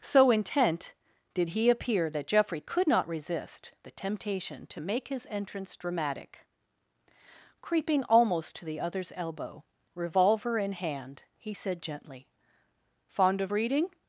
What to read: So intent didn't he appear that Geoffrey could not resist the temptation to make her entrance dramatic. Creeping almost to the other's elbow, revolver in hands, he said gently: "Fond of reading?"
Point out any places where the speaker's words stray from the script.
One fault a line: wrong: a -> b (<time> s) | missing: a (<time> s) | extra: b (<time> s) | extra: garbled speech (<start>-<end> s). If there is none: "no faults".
wrong: didn't -> did (1.3 s)
wrong: her -> his (5.1 s)
wrong: hands -> hand (10.7 s)